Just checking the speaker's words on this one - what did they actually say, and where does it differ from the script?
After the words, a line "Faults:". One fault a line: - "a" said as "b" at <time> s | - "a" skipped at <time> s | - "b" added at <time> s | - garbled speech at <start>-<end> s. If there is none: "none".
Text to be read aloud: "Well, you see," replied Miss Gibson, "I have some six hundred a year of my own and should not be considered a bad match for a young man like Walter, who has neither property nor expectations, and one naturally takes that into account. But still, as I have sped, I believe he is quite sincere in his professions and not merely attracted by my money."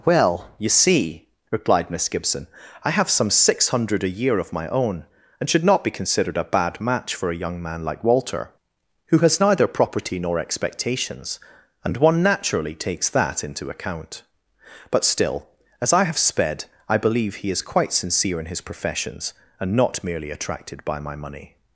"Well, you see," replied Miss Gibson, "I have some six hundred a year of my own and should not be considered a bad match for a young man like Walter, who has neither property nor expectations, and one naturally takes that into account. But still, as I have sped, I believe he is quite sincere in his professions and not merely attracted by my money."
Faults:
none